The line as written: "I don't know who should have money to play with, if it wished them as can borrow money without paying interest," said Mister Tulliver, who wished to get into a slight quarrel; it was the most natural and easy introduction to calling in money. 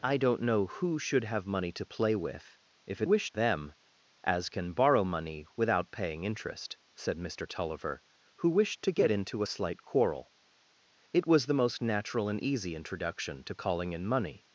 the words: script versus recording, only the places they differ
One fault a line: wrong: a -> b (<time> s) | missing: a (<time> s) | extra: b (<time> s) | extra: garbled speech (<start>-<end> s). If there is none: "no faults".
no faults